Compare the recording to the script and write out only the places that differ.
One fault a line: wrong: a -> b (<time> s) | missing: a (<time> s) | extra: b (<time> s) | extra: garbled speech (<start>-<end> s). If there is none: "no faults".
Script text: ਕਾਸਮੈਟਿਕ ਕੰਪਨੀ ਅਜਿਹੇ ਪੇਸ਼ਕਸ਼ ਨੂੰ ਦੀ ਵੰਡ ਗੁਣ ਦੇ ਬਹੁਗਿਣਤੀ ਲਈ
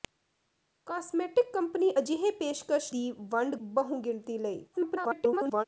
missing: ਨੂੰ (2.9 s)
missing: ਗੁਣ ਦੇ (3.6 s)
extra: garbled speech (4.7-5.6 s)